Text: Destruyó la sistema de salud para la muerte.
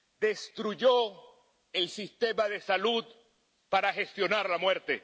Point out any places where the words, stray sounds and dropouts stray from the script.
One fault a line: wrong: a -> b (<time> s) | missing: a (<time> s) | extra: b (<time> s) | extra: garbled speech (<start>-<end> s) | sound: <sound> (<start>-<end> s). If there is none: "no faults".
wrong: la -> el (1.7 s)
extra: gestionar (3.9 s)